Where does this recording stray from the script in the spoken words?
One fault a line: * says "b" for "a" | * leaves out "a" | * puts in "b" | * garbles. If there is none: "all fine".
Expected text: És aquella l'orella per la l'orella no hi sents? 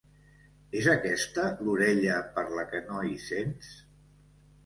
* says "aquesta" for "aquella"
* says "que" for "l'orella"